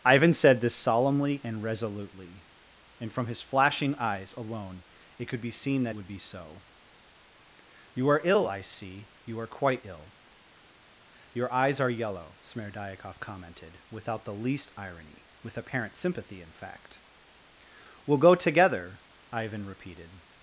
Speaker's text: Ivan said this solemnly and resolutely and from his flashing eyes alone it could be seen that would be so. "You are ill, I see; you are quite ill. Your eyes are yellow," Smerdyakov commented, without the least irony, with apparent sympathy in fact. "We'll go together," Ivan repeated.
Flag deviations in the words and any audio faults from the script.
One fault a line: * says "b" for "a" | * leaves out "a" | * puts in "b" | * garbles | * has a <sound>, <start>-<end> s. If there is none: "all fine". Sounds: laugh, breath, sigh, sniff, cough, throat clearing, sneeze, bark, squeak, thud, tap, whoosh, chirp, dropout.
all fine